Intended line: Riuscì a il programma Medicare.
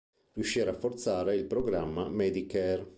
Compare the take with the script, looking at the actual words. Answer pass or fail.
fail